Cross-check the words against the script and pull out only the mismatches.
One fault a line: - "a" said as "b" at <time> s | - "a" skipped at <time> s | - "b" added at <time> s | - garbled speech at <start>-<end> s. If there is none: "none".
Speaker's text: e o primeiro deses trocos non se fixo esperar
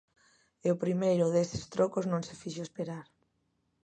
none